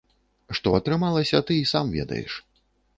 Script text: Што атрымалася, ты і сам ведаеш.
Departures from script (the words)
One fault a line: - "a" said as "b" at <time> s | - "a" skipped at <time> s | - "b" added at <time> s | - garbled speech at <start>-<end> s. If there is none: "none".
none